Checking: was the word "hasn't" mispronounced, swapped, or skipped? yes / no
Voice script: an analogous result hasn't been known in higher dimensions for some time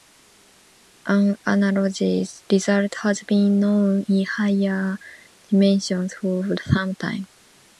yes